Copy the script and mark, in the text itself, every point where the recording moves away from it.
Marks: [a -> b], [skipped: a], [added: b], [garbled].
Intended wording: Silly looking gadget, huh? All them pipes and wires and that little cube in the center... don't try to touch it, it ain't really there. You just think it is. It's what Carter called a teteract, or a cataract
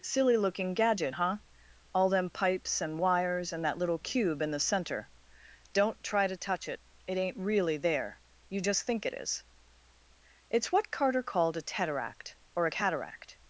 Silly looking gadget, huh? All them pipes and wires and that little cube in the center... don't try to touch it, it ain't really there. You just think it is. It's what Carter called a teteract, or a cataract